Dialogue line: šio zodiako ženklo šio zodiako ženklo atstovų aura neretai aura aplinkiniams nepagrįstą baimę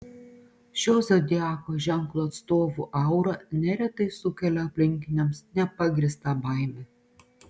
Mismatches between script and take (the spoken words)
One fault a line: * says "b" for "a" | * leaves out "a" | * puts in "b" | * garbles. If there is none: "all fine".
* leaves out "šio zodiako ženklo"
* says "sukelia" for "aura"